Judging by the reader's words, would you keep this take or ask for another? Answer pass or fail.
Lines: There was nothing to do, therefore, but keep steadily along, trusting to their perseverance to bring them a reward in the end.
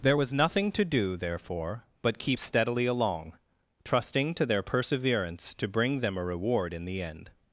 pass